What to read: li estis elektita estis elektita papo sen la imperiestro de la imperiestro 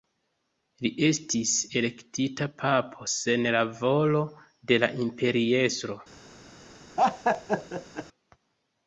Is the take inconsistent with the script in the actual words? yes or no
yes